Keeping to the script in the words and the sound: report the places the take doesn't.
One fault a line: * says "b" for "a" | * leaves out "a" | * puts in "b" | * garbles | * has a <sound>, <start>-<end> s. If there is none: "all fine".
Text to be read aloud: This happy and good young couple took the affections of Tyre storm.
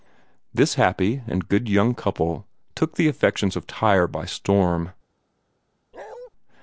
* puts in "by"
* has a bark, 5.9-6.3 s